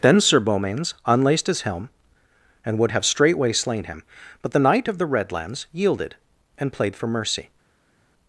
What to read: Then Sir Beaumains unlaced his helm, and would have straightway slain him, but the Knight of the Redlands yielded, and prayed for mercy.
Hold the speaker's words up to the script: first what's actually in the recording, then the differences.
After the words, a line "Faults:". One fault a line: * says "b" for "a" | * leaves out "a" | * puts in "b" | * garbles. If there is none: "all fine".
Then Sir Beaumains unlaced his helm, and would have straightway slain him, but the Knight of the Redlands yielded, and played for mercy.
Faults:
* says "played" for "prayed"